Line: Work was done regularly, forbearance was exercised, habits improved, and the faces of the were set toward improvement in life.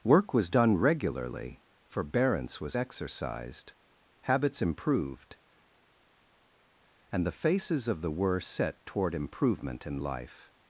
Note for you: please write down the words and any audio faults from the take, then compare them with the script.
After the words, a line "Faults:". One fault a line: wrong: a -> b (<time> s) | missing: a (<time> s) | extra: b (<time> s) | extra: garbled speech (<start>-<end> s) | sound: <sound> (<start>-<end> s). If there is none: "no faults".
Work was done regularly, forbearance was exercised, habits improved, and the faces of the were set toward improvement in life.
Faults:
no faults